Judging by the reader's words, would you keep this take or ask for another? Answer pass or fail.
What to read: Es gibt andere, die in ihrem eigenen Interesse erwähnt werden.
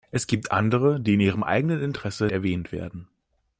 pass